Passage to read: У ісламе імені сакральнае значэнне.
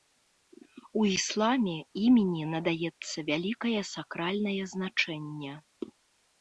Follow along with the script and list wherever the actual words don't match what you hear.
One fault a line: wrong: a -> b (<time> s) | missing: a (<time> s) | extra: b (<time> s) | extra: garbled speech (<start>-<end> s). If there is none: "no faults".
extra: надаецца вялікае (2.5 s)